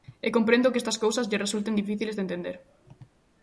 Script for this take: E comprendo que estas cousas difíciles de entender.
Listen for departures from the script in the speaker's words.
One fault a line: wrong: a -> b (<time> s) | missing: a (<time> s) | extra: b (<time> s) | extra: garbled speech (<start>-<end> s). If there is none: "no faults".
extra: lle resulten (1.3 s)